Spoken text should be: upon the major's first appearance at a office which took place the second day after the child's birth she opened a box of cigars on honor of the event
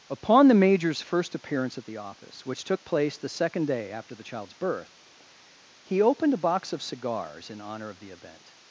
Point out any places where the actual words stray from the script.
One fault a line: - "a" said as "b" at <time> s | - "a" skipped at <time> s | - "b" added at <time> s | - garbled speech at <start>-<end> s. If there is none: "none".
- "a" said as "the" at 1.9 s
- "she" said as "he" at 5.8 s
- "on" said as "in" at 7.5 s